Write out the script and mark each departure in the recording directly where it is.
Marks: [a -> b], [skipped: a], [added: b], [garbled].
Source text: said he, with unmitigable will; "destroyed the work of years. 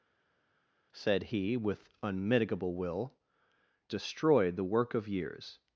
said he, with unmitigable will; "destroyed the work of years.